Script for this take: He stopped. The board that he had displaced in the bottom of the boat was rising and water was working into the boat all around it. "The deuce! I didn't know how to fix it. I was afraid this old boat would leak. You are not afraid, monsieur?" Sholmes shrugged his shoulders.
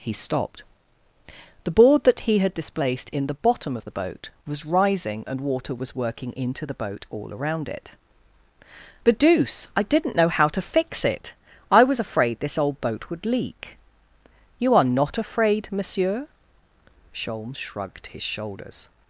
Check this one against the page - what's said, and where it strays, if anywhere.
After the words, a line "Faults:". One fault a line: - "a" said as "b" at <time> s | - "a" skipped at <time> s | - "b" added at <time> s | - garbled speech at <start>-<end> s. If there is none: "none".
He stopped. The board that he had displaced in the bottom of the boat was rising and water was working into the boat all around it. "But deuce! I didn't know how to fix it. I was afraid this old boat would leak. You are not afraid, monsieur?" Sholmes shrugged his shoulders.
Faults:
- "The" said as "But" at 9.0 s